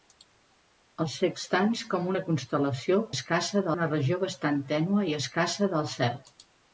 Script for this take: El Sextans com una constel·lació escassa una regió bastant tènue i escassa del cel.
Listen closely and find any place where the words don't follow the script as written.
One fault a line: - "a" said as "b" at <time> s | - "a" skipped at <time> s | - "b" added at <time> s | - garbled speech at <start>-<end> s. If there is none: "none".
none